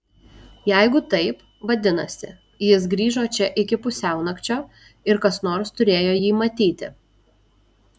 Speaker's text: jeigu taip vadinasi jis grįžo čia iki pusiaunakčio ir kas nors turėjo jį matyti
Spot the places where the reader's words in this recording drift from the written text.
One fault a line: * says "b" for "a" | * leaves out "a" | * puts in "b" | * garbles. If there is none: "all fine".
all fine